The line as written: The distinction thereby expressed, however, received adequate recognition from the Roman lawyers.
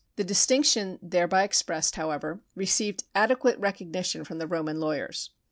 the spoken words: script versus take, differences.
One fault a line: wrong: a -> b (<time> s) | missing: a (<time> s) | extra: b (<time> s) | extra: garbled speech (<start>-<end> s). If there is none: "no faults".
no faults